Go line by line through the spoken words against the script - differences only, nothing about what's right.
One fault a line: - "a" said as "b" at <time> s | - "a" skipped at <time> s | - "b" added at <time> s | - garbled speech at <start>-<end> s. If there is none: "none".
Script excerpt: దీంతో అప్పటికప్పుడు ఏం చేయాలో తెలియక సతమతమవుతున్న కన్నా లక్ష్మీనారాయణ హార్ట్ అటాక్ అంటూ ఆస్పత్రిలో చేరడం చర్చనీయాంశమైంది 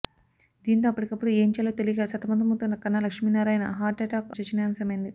- "అంటూ ఆస్పత్రిలో చేరడం" skipped at 4.3 s